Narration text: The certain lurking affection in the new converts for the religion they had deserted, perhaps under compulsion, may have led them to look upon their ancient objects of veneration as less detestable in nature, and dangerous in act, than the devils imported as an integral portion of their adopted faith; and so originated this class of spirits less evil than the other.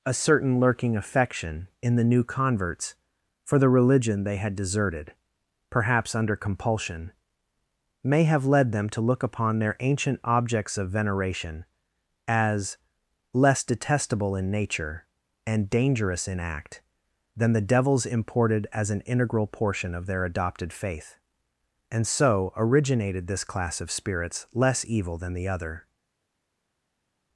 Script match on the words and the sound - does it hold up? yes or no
no